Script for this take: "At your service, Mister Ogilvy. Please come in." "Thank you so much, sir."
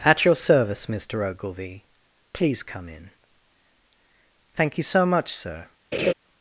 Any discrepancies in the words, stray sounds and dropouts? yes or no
yes